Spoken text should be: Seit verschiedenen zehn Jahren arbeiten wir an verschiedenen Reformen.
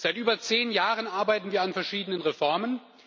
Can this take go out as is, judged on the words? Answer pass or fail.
fail